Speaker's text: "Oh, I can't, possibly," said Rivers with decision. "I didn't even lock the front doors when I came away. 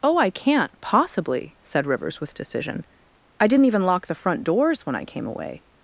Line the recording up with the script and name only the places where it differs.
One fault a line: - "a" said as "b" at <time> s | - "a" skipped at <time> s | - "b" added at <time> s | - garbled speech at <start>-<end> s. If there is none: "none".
none